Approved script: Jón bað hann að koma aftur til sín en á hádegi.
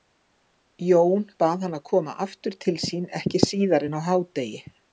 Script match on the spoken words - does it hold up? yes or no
no